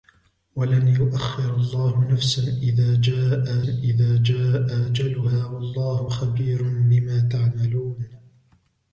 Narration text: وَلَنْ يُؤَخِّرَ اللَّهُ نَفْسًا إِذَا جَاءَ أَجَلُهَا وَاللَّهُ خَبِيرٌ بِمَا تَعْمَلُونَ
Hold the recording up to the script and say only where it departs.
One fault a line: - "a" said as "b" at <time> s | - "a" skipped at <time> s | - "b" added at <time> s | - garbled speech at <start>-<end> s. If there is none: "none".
- "إِذَا جَاءَ" added at 3.6 s